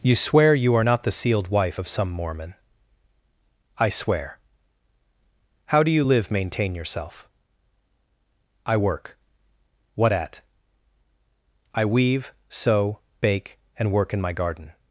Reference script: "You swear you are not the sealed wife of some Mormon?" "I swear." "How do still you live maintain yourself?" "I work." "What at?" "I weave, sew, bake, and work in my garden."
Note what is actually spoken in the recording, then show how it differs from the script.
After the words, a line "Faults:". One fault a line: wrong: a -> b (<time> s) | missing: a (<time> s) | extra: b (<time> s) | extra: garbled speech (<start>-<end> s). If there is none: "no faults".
"You swear you are not the sealed wife of some Mormon?" "I swear." "How do you live maintain yourself?" "I work." "What at?" "I weave, sew, bake, and work in my garden."
Faults:
missing: still (5.9 s)